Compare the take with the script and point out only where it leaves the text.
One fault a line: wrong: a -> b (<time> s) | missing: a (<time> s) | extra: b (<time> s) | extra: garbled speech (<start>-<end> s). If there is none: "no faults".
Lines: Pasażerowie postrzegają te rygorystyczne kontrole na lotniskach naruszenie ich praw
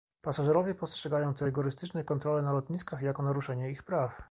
extra: jako (3.0 s)